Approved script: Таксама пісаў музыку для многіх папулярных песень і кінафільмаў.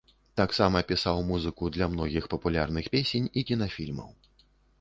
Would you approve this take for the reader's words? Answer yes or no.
yes